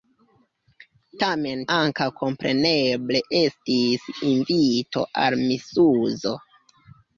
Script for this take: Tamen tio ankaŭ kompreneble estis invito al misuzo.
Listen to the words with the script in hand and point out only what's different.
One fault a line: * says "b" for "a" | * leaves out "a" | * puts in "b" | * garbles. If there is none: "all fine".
* leaves out "tio"